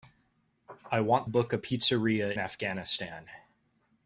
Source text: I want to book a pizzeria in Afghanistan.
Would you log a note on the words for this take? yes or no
yes